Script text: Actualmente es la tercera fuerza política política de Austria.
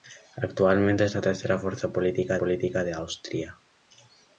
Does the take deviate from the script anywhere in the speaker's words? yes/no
no